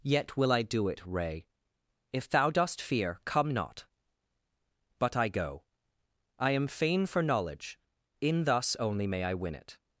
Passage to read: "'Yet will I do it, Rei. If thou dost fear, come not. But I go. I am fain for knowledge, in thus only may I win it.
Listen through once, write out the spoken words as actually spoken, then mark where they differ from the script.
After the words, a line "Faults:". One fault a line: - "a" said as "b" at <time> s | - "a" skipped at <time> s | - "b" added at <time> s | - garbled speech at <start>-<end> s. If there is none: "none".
"'Yet will I do it, Rei. If thou dost fear, come not. But I go. I am fain for knowledge, in thus only may I win it.
Faults:
none